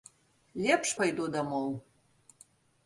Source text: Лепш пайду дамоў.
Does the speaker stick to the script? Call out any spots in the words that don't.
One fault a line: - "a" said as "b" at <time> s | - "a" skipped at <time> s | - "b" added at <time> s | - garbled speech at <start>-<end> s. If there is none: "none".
none